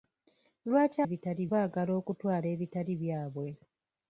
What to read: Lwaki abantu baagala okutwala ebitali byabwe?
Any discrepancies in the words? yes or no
yes